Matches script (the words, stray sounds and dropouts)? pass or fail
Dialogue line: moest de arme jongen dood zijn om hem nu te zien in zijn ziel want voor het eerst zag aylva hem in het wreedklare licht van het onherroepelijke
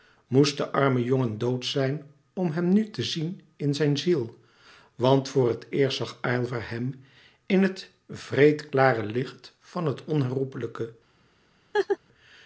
fail